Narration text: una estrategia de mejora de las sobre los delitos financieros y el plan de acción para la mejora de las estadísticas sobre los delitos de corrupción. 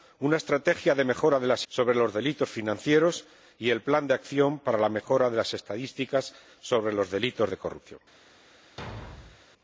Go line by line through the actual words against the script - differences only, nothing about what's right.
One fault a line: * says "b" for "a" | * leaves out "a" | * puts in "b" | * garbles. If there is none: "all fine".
all fine